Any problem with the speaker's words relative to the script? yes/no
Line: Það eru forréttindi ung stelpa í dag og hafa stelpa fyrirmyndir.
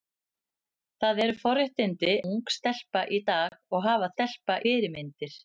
no